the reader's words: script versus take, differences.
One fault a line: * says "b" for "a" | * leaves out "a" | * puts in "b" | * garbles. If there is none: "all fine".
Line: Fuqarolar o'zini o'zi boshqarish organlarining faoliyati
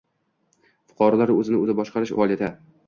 * leaves out "organlarining"